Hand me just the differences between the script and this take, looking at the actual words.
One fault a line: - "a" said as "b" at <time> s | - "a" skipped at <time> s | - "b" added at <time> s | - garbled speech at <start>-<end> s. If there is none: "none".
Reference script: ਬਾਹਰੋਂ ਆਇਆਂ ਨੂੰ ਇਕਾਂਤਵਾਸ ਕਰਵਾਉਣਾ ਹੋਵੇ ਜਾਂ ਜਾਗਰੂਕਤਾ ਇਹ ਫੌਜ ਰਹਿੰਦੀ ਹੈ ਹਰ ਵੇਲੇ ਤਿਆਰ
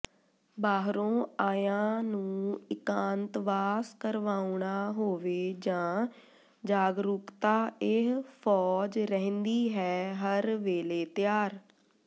none